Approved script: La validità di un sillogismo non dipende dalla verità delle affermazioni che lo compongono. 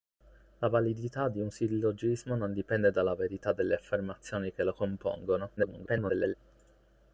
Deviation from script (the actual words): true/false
true